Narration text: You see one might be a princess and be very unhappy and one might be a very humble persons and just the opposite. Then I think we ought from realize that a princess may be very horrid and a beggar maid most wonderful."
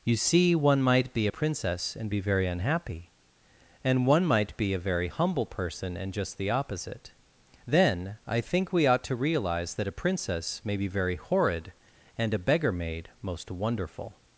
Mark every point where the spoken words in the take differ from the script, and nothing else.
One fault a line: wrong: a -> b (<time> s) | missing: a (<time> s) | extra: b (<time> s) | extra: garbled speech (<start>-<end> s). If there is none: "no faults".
wrong: persons -> person (5.5 s)
wrong: from -> to (9.0 s)